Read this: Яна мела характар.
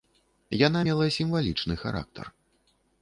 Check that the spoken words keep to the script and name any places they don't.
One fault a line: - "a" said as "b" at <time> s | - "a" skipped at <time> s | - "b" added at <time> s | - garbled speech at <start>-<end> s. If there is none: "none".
- "сімвалічны" added at 1.2 s